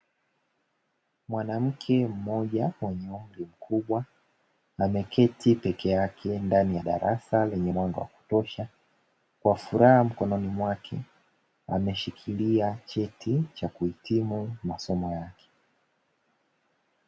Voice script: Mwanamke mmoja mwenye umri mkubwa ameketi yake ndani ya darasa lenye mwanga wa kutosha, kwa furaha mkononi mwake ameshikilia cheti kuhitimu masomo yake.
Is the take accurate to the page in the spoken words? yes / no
no